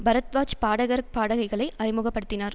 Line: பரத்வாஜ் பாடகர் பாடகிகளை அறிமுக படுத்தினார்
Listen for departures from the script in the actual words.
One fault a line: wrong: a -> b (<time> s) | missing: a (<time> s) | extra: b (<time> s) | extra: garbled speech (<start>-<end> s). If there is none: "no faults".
no faults